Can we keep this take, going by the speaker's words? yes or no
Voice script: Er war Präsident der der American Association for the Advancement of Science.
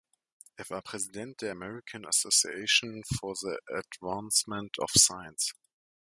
no